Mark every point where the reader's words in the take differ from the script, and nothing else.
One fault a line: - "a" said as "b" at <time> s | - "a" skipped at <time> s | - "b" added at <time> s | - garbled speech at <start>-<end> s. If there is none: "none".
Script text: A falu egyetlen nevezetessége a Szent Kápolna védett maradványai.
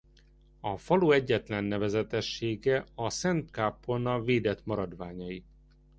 none